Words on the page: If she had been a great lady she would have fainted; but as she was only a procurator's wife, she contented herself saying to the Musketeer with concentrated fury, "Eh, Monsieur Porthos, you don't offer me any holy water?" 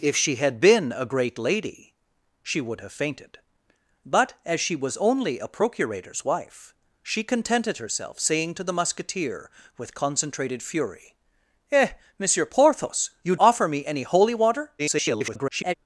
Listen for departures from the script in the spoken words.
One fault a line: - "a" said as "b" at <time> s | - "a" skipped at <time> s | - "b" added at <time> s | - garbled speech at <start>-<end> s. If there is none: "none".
- "don't" skipped at 13.3 s
- garbled speech at 14.8-15.7 s